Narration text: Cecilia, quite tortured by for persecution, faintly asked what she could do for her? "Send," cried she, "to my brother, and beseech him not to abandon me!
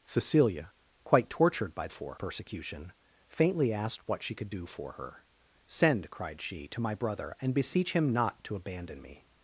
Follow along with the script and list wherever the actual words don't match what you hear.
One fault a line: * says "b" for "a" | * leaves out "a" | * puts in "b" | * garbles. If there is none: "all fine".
all fine